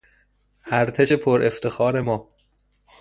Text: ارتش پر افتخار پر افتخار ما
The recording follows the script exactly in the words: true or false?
false